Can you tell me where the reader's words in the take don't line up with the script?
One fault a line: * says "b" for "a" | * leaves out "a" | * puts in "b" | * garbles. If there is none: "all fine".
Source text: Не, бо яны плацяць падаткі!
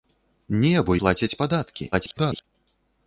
* leaves out "яны"
* garbles